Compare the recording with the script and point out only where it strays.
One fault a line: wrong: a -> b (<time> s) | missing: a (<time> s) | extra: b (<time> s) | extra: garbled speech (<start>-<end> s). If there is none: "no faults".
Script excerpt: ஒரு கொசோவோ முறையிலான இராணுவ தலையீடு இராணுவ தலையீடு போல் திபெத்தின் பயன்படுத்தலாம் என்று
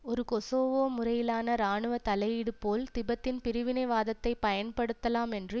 missing: இராணுவ தலையீடு (2.5 s)
extra: பிரிவினைவாதத்தை (3.4 s)